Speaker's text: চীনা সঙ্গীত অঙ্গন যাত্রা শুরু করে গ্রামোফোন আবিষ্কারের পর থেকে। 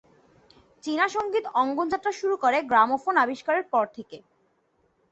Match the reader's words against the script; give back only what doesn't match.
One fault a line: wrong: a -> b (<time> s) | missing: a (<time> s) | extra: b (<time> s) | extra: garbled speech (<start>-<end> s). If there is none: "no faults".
no faults